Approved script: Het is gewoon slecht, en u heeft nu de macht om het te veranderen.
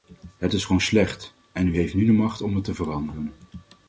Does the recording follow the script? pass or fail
pass